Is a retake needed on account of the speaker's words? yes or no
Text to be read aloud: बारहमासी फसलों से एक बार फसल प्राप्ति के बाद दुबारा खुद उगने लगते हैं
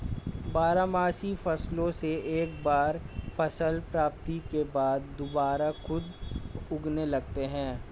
no